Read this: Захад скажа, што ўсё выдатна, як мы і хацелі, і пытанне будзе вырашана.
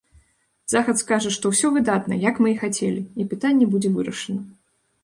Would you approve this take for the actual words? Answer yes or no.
yes